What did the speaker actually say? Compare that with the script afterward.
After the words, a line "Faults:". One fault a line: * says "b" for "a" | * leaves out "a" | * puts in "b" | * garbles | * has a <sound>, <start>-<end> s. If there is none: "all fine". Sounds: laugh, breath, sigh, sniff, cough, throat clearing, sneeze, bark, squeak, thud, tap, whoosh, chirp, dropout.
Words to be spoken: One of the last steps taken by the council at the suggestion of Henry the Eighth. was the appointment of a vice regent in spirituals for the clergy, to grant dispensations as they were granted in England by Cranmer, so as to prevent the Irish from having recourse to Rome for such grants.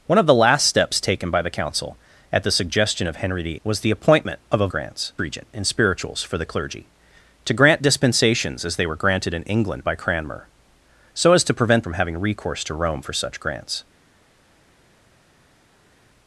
One of the last steps taken by the council at the suggestion of Henry the. Was the appointment of a grants regent in spirituals for the clergy, to grant dispensations as they were granted in England by Cranmer, so as to prevent from having recourse to Rome for such grants.
Faults:
* leaves out "Eighth"
* says "grants" for "vice"
* leaves out "the Irish"